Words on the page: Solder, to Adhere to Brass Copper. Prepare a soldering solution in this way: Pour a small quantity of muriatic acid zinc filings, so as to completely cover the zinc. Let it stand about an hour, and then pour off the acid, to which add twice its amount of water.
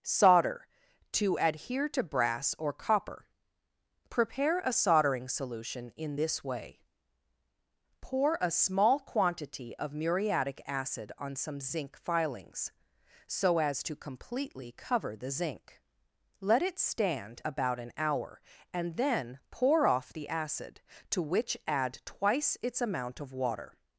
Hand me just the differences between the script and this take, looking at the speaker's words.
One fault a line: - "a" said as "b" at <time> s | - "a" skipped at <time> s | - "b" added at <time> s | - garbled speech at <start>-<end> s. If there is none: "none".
- "or" added at 2.6 s
- "on some" added at 11.2 s